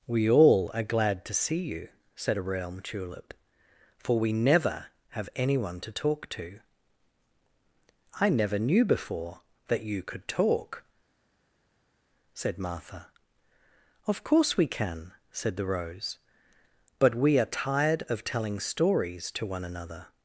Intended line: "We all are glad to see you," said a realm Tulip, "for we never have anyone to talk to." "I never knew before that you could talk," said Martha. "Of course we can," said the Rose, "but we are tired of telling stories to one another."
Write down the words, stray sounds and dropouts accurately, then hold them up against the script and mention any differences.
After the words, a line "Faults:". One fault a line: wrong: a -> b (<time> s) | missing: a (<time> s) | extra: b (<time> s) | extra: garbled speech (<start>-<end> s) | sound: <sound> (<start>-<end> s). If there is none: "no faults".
"We all are glad to see you," said a realm Tulip, "for we never have anyone to talk to." "I never knew before that you could talk," said Martha. "Of course we can," said the Rose, "but we are tired of telling stories to one another."
Faults:
no faults